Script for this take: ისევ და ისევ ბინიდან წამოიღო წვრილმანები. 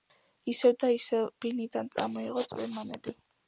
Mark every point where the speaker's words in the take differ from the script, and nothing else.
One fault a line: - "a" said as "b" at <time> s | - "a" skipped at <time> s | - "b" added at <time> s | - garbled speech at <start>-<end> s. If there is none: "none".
none